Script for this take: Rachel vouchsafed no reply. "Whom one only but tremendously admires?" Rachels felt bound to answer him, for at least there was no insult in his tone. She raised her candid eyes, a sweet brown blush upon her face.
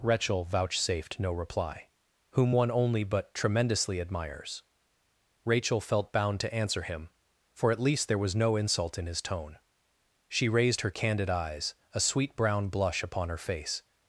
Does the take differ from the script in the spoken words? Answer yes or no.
yes